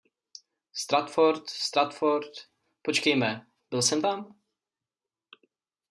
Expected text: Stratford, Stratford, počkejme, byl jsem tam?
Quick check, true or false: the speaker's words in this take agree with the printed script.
true